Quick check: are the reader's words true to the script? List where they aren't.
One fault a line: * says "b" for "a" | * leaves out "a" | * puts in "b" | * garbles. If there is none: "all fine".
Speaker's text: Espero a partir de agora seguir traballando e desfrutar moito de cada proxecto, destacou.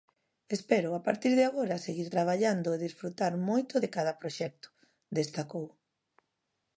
all fine